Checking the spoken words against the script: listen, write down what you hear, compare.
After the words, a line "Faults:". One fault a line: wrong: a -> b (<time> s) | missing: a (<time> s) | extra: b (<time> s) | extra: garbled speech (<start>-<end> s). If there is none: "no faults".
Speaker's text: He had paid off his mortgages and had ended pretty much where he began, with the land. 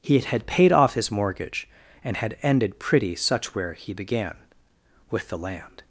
He had paid off his mortgage and had ended pretty such where he began, with the land.
Faults:
wrong: mortgages -> mortgage (1.1 s)
wrong: much -> such (3.1 s)